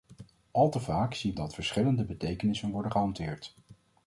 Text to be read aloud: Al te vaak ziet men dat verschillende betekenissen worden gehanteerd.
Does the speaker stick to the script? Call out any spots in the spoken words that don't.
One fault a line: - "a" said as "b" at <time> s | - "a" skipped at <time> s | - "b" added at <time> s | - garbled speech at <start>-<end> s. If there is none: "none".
- "men" skipped at 1.4 s